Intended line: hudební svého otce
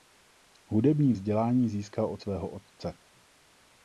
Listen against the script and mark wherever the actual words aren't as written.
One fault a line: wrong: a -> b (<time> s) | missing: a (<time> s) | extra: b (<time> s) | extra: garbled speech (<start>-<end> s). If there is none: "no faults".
extra: vzdělání získal od (1.1 s)